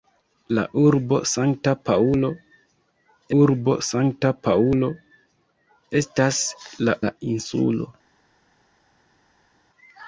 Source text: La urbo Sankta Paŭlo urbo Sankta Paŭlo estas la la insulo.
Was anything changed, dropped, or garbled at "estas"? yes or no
no